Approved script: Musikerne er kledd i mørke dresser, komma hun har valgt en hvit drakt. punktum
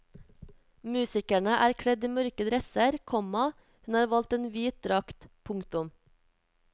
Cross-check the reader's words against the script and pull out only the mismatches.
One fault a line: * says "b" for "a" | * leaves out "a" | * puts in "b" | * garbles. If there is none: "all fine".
all fine